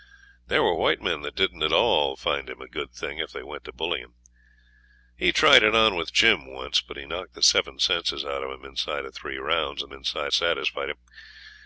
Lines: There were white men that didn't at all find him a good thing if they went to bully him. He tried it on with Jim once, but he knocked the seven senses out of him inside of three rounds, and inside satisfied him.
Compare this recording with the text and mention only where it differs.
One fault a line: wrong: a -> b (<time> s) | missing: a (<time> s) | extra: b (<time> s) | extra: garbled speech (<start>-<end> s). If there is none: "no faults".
no faults